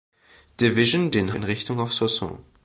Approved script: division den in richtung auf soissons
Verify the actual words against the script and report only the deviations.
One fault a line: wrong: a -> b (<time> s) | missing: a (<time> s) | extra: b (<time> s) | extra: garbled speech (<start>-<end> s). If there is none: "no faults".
no faults